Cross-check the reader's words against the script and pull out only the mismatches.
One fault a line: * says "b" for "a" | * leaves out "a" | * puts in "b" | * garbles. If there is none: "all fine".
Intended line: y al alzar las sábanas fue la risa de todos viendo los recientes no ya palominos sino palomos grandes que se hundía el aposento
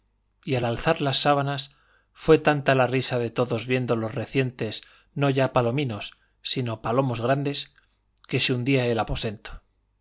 * puts in "tanta"